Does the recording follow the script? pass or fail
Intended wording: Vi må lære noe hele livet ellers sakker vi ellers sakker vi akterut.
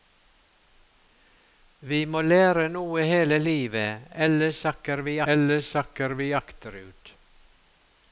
pass